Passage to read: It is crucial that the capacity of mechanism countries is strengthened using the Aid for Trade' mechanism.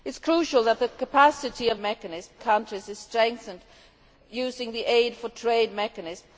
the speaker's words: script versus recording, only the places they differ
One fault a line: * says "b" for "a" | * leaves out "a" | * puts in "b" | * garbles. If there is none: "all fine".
all fine